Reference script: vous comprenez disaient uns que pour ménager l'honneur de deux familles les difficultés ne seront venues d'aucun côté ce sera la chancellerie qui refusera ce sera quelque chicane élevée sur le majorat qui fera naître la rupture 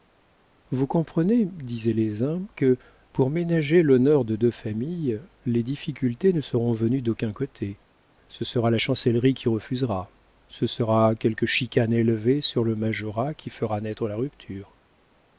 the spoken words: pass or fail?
fail